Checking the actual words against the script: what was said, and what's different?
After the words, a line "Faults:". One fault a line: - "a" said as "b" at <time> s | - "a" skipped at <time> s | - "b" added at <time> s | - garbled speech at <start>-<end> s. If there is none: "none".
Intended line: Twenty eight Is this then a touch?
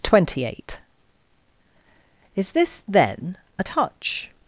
Twenty eight Is this then a touch?
Faults:
none